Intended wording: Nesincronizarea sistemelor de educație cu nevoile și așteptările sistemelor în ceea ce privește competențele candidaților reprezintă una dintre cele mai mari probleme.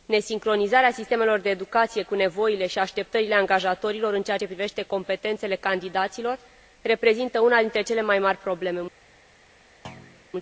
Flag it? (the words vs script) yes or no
yes